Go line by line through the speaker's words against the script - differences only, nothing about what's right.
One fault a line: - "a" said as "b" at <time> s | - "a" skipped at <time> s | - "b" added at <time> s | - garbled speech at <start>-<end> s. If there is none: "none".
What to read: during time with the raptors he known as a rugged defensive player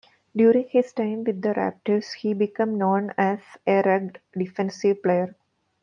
- "his" added at 0.7 s
- "became" added at 2.3 s